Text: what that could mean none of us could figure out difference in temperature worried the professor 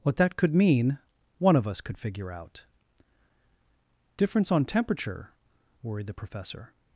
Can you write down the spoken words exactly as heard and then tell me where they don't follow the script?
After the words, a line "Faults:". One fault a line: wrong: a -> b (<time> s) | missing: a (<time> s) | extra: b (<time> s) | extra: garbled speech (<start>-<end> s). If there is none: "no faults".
what that could mean one of us could figure out difference on temperature worried the professor
Faults:
wrong: none -> one (1.4 s)
wrong: in -> on (4.5 s)